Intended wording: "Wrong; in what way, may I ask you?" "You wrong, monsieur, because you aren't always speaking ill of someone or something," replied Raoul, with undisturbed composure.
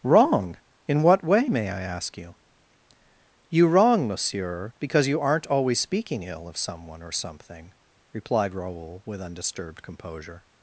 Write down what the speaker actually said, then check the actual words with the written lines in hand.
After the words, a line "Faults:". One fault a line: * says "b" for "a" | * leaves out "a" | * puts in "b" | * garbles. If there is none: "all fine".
"Wrong; in what way, may I ask you?" "You wrong, monsieur, because you aren't always speaking ill of someone or something," replied Raoul, with undisturbed composure.
Faults:
all fine